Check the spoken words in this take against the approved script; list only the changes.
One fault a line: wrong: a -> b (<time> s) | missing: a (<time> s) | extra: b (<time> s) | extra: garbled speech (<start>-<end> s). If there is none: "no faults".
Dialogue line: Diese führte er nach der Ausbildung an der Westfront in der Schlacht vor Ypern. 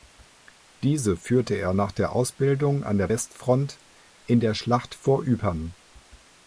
no faults